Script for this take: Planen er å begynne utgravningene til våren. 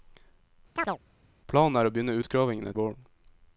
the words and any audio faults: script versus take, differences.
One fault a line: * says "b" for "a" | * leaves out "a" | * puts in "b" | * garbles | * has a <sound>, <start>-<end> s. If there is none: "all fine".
* has a chirp, 0.8-1.0 s
* leaves out "til"